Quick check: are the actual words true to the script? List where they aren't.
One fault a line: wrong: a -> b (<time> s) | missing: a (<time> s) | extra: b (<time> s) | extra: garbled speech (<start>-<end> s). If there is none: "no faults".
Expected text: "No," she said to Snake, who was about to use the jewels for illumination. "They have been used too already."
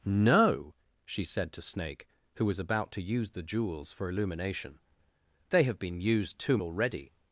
no faults